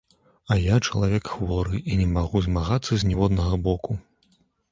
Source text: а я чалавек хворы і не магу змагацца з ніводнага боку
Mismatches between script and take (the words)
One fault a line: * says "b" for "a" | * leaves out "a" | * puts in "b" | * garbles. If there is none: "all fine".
all fine